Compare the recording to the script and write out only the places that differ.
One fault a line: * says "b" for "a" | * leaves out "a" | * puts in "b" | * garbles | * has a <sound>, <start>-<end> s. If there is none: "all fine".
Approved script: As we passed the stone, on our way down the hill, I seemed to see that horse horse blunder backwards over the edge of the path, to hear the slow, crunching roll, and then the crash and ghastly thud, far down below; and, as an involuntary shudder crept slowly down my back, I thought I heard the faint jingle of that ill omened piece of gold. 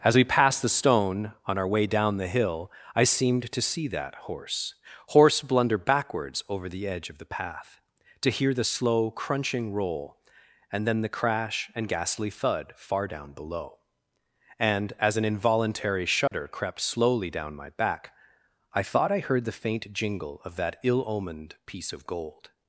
* has a dropout, 16.3-16.3 s